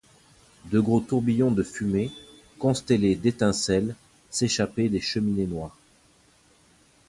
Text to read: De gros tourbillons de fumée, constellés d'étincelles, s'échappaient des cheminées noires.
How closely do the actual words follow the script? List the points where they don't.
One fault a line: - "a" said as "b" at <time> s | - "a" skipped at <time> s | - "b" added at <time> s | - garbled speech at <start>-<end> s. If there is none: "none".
none